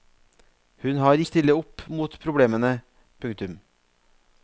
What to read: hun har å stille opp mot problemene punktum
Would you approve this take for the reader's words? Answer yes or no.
yes